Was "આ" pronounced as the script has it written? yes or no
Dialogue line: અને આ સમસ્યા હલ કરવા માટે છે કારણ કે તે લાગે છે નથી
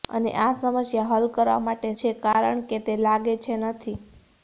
yes